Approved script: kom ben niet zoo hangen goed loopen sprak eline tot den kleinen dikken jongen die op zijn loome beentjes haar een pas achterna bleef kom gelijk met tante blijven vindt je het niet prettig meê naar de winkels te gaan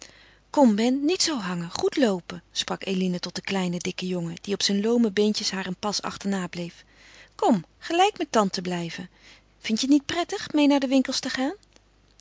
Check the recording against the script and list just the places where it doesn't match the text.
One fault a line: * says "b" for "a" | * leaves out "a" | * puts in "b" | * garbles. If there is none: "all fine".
all fine